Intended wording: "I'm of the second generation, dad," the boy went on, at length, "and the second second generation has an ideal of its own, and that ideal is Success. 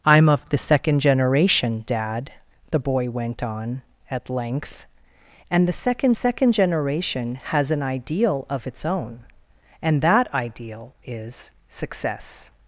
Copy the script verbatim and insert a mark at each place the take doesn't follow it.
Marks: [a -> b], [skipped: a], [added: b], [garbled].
"I'm of the second generation, dad," the boy went on, at length, "and the second second generation has an ideal of its own, and that ideal is Success.